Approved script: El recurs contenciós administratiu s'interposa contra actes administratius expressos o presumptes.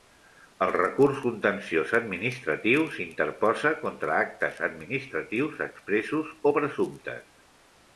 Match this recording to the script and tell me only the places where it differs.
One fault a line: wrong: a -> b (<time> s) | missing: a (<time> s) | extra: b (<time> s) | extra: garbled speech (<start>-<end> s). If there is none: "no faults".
no faults